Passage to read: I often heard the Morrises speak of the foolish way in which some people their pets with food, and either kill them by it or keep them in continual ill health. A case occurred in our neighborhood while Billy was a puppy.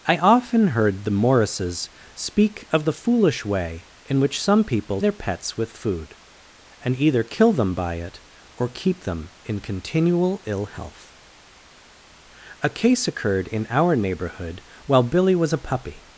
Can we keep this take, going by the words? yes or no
yes